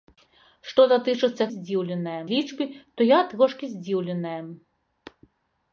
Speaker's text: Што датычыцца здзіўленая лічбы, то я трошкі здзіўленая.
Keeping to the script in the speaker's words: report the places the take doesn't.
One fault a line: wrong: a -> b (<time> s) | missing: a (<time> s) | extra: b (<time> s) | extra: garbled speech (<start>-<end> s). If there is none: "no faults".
no faults